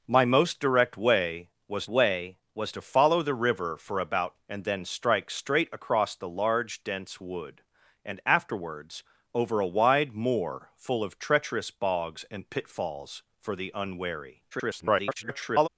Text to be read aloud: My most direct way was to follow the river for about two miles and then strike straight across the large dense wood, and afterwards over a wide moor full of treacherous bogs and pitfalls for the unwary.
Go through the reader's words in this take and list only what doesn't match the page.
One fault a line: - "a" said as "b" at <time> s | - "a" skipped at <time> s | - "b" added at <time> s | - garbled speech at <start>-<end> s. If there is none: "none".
- "way was" added at 1.9 s
- "two miles" skipped at 4.4 s
- garbled speech at 14.5-15.7 s